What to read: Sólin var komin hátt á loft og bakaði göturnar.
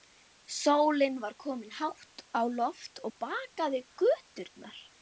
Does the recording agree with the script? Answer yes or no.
yes